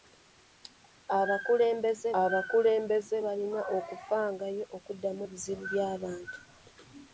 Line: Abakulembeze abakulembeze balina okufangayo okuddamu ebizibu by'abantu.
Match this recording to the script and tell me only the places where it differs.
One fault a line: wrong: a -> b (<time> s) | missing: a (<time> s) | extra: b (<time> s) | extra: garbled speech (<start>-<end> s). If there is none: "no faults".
no faults